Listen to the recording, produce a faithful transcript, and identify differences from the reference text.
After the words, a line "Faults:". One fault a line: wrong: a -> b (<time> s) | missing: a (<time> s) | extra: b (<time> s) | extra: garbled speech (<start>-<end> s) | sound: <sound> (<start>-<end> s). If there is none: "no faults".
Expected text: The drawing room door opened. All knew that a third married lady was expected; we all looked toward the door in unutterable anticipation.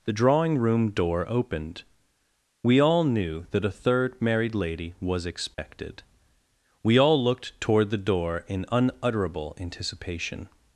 The drawing room door opened. We all knew that a third married lady was expected; we all looked toward the door in unutterable anticipation.
Faults:
extra: We (2.6 s)
sound: dropout (5.5-5.6 s)